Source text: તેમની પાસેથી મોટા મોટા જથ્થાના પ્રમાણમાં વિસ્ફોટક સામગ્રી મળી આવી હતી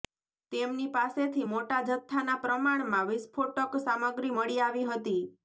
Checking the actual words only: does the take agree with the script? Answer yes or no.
no